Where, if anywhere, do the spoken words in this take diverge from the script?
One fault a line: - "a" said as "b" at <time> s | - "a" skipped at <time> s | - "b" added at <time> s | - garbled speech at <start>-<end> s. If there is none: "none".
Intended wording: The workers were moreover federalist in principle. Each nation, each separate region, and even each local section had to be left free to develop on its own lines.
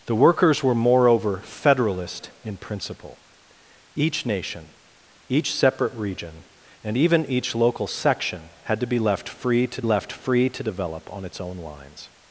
- "left free to" added at 9.8 s